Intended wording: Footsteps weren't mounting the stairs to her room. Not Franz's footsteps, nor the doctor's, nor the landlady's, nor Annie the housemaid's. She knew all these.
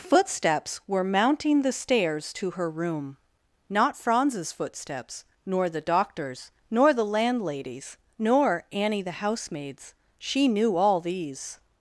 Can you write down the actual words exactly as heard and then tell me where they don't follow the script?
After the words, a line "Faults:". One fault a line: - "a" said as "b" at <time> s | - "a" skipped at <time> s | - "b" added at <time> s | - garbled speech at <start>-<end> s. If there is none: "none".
Footsteps were mounting the stairs to her room. Not Franz's footsteps, nor the doctor's, nor the landlady's, nor Annie the housemaid's. She knew all these.
Faults:
- "weren't" said as "were" at 0.9 s